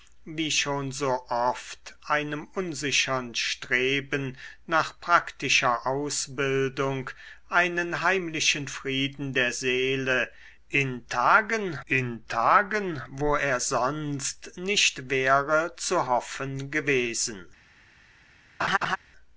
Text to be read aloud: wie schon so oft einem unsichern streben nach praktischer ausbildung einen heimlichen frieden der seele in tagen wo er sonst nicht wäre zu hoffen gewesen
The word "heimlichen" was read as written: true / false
true